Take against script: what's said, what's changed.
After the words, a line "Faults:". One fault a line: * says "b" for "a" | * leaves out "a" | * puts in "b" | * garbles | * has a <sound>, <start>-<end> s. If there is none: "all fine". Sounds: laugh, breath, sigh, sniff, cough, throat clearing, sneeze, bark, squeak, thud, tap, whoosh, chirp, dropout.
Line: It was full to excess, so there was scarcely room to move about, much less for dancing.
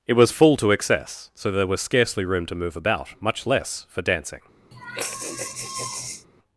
It was full to excess, so there was scarcely room to move about, much less for dancing.
Faults:
* has a sigh, 4.7-6.3 s